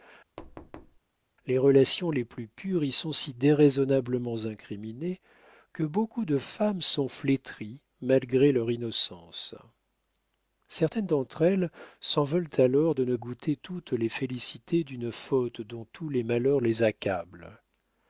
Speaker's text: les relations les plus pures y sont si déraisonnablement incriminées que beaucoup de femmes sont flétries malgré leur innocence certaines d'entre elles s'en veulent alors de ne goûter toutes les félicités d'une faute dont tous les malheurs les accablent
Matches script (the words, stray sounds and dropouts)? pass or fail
fail